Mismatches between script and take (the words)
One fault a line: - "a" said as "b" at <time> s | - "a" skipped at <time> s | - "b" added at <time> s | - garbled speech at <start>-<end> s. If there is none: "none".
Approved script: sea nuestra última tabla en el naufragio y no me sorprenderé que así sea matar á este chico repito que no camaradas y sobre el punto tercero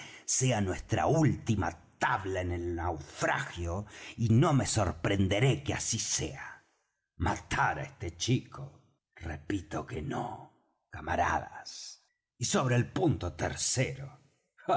none